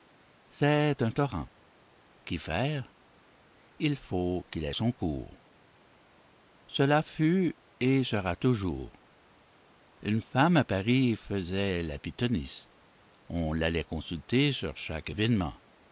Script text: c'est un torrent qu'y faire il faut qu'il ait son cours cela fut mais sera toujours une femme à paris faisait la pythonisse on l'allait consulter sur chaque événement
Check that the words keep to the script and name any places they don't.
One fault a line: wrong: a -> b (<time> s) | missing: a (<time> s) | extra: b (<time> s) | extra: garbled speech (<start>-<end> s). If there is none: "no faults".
wrong: mais -> et (7.8 s)